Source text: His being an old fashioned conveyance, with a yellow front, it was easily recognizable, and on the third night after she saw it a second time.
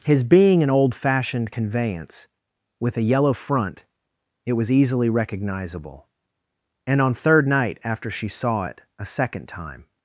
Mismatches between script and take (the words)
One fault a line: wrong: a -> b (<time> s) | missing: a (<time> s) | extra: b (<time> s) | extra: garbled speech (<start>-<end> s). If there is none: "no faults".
missing: the (7.1 s)